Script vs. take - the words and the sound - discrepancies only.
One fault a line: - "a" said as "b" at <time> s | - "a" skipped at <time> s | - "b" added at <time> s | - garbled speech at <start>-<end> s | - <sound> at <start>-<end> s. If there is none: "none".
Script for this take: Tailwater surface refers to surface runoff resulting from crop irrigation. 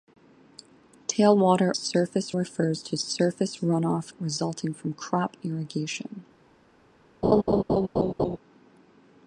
- laugh at 7.2-8.4 s